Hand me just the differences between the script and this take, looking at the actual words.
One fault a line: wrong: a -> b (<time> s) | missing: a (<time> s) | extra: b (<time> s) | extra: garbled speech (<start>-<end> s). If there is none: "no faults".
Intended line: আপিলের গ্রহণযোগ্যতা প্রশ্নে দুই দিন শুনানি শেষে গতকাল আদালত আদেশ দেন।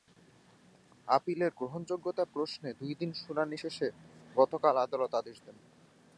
no faults